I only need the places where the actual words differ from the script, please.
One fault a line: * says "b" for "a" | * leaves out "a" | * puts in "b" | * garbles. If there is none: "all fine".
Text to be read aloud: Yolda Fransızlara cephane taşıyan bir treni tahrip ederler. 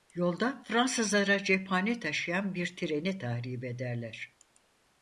all fine